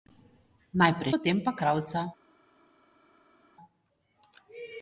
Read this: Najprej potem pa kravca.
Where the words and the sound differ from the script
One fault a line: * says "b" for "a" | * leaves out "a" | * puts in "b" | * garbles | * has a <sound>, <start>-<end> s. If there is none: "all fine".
all fine